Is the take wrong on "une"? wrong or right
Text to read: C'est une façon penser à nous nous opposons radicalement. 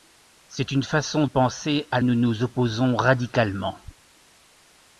right